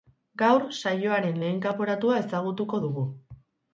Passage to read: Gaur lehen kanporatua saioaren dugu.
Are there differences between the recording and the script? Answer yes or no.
yes